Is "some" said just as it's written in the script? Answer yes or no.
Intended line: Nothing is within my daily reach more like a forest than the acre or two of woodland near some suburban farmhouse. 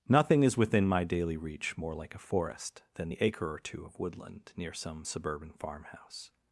yes